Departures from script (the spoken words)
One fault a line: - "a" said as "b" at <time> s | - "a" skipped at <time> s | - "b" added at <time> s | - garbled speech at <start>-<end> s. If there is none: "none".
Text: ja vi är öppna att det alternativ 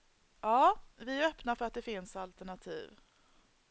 - "för" added at 1.5 s
- "finns" added at 1.8 s